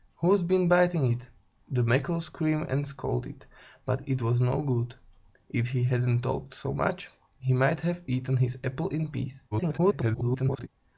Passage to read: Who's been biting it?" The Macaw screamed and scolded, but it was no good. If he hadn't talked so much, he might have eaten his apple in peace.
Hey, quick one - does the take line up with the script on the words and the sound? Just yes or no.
no